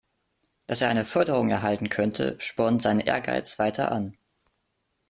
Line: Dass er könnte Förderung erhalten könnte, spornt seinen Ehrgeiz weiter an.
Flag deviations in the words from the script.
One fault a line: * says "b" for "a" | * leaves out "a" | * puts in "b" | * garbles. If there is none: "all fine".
* says "eine" for "könnte"